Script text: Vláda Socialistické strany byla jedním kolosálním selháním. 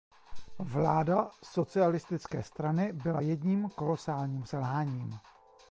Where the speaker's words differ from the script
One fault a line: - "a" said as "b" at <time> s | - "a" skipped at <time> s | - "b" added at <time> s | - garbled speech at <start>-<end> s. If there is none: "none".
none